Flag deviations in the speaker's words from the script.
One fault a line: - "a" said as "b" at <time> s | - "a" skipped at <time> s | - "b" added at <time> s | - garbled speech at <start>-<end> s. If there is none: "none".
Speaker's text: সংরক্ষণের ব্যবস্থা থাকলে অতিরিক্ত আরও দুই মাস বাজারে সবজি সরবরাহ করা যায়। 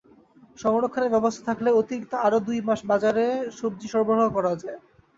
none